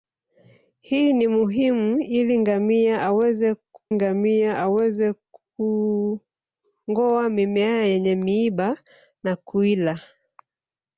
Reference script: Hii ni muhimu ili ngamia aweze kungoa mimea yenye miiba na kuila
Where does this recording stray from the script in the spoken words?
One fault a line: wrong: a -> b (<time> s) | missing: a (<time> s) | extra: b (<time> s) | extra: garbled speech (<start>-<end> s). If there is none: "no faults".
extra: ngamia aweze (3.9 s)